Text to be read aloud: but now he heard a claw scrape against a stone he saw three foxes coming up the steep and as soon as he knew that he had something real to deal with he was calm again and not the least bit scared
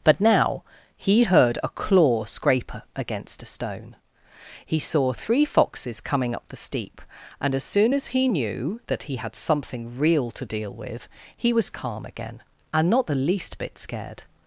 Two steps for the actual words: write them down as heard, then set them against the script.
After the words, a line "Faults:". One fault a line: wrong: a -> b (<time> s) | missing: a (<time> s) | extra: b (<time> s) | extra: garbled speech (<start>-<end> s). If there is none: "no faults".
but now he heard a claw scrape against a stone he saw three foxes coming up the steep and as soon as he knew that he had something real to deal with he was calm again and not the least bit scared
Faults:
no faults